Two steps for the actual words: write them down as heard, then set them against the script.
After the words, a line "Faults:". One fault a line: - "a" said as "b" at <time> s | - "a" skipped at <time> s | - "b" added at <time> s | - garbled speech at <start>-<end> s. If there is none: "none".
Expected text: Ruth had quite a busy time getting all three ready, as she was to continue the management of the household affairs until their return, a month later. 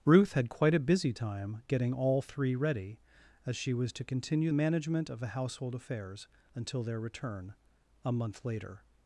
Ruth had quite a busy time getting all three ready, as she was to continue management of the household affairs until their return, a month later.
Faults:
- "the" skipped at 4.5 s